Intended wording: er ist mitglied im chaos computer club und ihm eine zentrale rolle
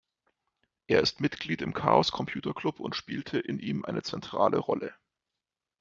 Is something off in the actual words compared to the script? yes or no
yes